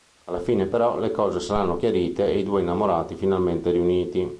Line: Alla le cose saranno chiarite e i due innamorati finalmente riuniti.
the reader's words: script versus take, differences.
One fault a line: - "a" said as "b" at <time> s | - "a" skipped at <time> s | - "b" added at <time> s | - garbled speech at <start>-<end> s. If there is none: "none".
- "fine però" added at 0.4 s